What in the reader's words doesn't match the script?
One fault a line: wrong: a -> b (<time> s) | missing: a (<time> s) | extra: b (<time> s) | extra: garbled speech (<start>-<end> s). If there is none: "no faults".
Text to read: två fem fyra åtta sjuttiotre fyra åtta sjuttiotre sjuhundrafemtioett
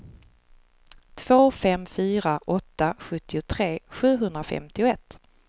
missing: fyra åtta sjuttiotre (3.8 s)